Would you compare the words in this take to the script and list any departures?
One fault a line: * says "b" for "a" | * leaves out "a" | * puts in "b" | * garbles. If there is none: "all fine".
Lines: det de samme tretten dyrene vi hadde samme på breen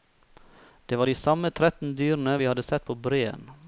* puts in "var"
* says "sett" for "samme"